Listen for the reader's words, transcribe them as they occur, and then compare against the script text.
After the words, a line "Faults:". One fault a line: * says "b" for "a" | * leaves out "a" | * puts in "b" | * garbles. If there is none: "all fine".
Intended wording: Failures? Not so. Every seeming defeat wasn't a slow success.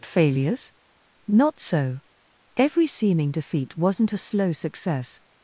Failures? Not so. Every seeming defeat wasn't a slow success.
Faults:
all fine